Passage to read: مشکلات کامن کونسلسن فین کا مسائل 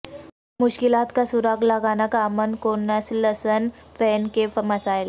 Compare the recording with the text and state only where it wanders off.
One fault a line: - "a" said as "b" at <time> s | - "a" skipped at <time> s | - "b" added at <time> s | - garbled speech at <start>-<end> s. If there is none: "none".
- "کا سراغ لگانا" added at 1.1 s
- "کا" said as "کے" at 4.3 s